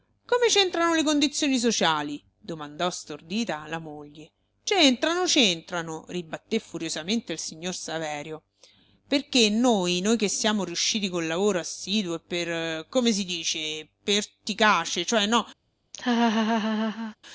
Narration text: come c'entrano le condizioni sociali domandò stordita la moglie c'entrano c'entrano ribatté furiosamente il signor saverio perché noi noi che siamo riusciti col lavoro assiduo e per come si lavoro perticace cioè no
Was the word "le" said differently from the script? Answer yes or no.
no